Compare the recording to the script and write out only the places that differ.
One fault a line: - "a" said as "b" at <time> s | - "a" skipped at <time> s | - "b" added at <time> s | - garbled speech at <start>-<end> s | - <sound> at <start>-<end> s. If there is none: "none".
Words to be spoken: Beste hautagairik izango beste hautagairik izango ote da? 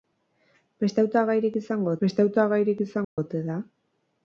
- dropout at 3.0-3.2 s